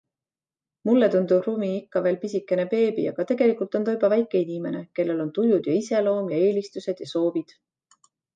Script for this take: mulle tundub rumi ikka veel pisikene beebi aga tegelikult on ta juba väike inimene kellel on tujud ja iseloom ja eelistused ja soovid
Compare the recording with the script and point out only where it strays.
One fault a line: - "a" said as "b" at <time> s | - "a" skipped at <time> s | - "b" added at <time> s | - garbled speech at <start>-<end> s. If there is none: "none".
none